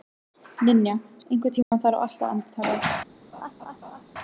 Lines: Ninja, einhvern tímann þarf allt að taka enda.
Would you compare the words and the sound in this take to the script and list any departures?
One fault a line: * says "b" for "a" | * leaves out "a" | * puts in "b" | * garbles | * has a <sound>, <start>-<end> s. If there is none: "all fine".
* has a dropout, 1.6-1.7 s
* has a laugh, 3.3-4.0 s